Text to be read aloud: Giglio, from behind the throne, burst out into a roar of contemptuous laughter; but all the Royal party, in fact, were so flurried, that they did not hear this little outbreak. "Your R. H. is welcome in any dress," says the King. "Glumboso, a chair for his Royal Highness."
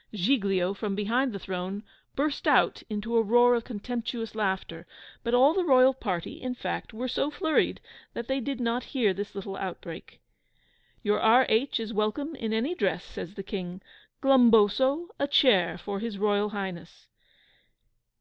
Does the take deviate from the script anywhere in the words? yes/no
no